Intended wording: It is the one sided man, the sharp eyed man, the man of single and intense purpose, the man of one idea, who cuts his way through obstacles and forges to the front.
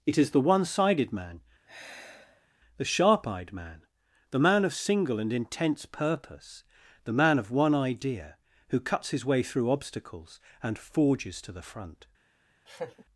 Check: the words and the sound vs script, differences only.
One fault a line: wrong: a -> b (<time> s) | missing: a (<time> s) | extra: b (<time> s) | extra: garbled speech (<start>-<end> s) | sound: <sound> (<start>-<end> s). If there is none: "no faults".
sound: sigh (1.7-2.5 s)
sound: laugh (12.7-13.0 s)